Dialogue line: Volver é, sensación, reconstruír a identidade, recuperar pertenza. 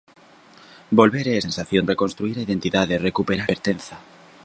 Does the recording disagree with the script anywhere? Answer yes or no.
no